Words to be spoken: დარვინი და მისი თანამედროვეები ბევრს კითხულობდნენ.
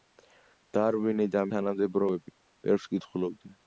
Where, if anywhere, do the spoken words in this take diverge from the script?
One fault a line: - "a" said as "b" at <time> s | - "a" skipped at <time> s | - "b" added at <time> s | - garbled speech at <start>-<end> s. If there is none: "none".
- "მისი" skipped at 1.4 s